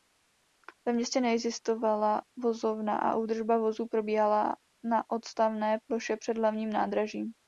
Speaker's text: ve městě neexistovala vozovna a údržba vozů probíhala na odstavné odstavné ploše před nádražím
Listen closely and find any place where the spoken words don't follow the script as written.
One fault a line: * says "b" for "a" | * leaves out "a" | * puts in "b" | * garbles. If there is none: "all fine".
* leaves out "odstavné"
* puts in "hlavním"